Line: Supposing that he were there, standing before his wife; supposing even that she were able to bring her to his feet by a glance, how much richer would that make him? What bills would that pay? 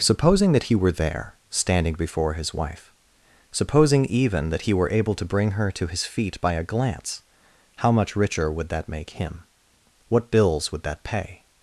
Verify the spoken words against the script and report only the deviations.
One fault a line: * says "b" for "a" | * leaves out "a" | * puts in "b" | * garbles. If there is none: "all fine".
* says "he" for "she"